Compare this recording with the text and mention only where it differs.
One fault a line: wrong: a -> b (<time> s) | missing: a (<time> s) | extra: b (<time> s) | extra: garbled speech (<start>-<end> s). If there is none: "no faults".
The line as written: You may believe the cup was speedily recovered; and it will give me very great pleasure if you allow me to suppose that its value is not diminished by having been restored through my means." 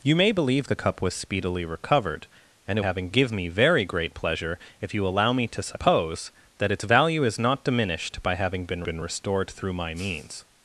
wrong: will -> having (2.8 s)
extra: been (8.8 s)